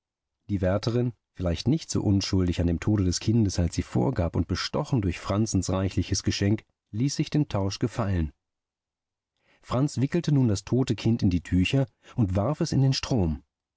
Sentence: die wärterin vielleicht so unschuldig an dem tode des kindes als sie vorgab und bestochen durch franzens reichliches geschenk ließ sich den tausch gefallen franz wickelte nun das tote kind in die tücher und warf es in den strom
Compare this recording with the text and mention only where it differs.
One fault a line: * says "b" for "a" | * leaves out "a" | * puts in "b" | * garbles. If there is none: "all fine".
* puts in "nicht"